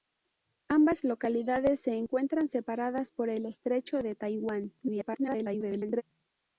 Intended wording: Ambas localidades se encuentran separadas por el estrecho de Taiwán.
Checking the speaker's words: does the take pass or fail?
fail